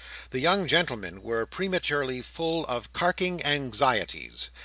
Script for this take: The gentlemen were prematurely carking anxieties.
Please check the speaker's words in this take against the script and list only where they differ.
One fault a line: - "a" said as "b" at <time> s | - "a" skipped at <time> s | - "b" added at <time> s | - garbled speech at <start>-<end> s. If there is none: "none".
- "young" added at 0.4 s
- "full of" added at 2.2 s